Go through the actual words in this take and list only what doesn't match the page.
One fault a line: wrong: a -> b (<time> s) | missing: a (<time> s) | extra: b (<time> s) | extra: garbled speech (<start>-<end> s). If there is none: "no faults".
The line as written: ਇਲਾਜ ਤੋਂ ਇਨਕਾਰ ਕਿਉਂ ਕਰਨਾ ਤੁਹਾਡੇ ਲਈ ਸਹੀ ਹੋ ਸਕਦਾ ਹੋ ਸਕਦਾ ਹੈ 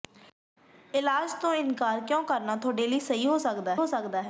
no faults